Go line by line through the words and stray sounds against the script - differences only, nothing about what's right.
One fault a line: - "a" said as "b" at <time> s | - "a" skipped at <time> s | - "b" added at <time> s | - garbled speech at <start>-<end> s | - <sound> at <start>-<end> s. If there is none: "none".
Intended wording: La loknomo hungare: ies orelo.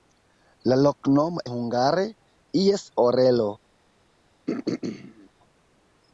- throat clearing at 4.5-5.3 s